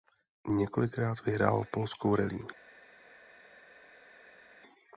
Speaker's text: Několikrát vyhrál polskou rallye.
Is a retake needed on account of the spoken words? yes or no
no